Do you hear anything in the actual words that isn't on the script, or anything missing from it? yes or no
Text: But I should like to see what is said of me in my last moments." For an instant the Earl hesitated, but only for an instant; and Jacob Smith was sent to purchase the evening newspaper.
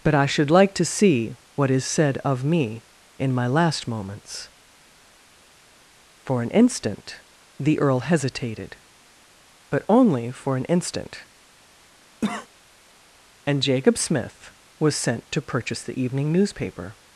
no